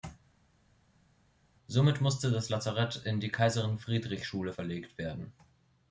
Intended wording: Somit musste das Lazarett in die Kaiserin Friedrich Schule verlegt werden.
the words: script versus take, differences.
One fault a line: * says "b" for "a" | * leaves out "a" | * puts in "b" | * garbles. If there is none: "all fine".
all fine